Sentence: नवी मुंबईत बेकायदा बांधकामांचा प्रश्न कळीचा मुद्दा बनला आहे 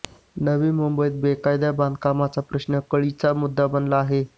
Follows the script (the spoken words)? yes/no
yes